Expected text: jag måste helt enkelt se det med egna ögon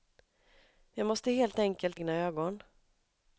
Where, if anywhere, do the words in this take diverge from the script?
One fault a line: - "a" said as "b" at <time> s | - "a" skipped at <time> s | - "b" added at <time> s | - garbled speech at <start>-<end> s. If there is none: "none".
- "se det med" skipped at 2.0 s